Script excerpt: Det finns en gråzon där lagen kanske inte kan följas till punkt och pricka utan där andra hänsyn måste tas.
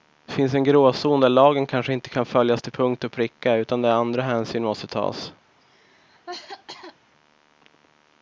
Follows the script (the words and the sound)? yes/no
no